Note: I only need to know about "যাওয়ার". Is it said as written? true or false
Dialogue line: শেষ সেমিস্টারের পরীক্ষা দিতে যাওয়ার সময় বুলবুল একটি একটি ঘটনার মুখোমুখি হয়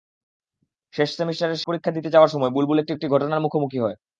true